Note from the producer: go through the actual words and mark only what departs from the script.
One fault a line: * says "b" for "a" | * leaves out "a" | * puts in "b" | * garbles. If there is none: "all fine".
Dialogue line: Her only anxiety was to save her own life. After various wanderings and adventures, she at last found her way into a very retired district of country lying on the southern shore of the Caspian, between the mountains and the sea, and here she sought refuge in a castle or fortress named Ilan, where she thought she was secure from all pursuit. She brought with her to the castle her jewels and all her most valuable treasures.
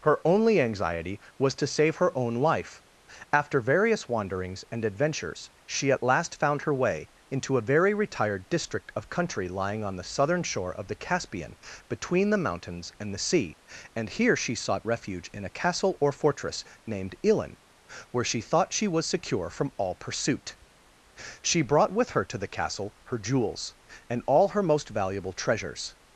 all fine